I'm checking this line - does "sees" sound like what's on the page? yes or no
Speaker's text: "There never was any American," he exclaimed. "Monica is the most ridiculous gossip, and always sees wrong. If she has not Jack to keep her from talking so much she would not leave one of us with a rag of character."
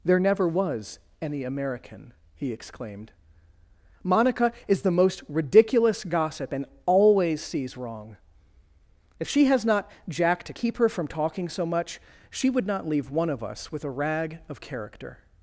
yes